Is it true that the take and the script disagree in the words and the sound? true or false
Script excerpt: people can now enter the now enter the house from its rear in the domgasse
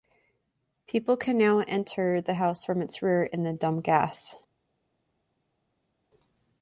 true